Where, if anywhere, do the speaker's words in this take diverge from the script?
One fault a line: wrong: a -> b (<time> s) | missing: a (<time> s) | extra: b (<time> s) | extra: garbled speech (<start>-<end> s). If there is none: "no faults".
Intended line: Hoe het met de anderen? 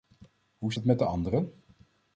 no faults